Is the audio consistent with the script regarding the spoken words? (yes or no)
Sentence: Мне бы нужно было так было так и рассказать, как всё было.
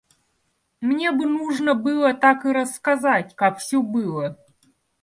no